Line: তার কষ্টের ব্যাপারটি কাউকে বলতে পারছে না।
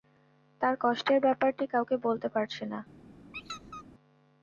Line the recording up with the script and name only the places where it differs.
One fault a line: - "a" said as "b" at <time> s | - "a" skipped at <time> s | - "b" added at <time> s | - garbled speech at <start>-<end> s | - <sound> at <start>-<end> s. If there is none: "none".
- squeak at 3.3-3.8 s